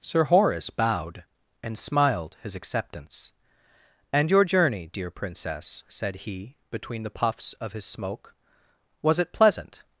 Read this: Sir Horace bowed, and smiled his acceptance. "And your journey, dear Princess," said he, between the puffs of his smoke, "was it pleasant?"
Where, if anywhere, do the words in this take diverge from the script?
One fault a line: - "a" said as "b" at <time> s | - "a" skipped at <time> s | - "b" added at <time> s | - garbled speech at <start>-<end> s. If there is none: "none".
none